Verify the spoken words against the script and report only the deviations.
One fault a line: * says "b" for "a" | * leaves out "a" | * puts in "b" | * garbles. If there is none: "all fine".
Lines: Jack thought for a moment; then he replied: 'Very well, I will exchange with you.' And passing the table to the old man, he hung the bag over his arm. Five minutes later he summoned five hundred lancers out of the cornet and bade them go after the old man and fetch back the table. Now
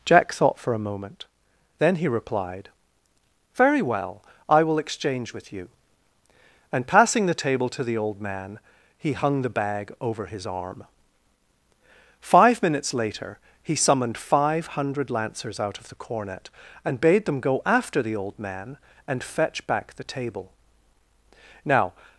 all fine